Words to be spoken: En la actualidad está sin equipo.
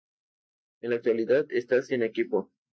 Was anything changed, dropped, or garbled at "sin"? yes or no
no